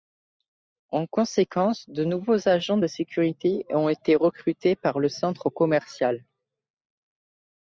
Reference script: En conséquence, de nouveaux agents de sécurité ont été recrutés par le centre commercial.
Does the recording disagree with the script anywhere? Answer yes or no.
no